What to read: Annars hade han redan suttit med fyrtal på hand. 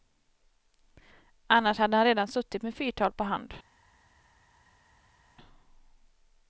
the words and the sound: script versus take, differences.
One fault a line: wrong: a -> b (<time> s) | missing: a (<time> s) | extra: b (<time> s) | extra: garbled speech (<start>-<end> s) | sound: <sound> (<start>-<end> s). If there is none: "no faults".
no faults